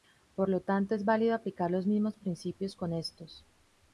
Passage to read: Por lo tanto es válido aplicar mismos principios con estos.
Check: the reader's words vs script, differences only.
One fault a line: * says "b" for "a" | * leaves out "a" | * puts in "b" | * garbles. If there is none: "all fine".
* puts in "los"